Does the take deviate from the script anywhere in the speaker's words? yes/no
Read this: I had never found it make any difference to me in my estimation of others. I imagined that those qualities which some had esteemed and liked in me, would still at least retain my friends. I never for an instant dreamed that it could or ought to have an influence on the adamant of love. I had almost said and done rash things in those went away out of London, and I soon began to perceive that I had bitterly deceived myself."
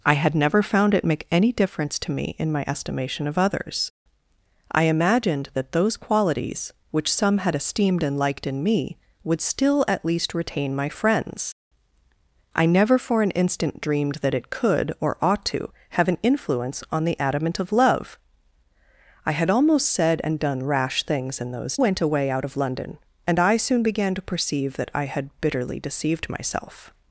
no